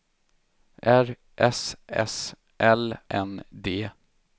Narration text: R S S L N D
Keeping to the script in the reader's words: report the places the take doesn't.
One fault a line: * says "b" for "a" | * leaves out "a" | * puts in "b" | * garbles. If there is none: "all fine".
all fine